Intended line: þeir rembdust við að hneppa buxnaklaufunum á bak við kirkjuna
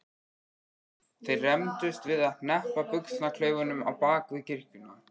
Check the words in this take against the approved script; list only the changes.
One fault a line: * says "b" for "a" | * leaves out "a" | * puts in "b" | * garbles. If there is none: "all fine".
all fine